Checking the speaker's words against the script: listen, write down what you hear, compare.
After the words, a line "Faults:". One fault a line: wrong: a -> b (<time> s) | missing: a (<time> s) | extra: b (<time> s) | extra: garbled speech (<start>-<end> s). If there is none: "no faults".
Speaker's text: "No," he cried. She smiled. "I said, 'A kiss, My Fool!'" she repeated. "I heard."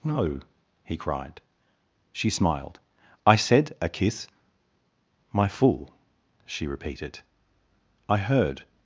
"No," he cried. She smiled. "I said, 'A kiss, My Fool!'" she repeated. "I heard."
Faults:
no faults